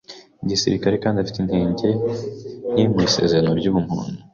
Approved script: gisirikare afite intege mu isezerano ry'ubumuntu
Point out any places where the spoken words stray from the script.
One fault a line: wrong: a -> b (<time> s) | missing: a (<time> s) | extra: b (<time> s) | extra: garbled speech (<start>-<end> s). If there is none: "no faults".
extra: kandi (1.0 s)
extra: nke (2.7 s)